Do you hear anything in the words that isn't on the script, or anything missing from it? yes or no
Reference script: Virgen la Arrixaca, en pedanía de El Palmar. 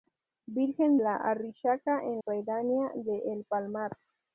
no